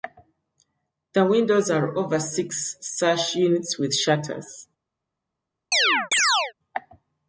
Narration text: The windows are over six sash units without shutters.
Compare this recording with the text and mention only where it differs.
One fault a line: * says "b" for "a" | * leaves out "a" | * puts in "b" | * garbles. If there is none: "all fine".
* says "with" for "without"